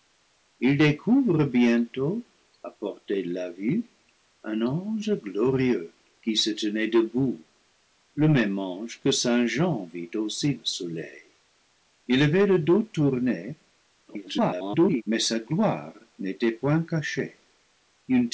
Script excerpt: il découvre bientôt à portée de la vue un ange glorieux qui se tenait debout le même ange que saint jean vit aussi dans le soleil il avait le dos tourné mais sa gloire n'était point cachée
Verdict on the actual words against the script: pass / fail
fail